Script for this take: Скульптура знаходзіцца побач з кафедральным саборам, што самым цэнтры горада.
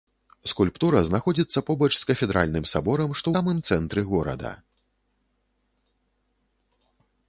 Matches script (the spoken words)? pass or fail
pass